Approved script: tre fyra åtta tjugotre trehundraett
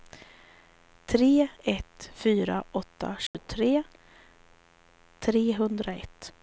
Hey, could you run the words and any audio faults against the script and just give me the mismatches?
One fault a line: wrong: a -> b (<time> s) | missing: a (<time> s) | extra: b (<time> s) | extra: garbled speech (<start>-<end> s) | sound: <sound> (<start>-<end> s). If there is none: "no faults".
extra: ett (1.6 s)
sound: dropout (3.3-3.3 s)